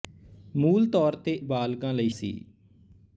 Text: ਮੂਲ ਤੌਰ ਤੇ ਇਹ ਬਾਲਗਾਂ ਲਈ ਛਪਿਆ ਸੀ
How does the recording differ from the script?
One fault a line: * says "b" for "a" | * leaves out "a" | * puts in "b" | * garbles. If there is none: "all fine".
* leaves out "ਇਹ"
* leaves out "ਛਪਿਆ"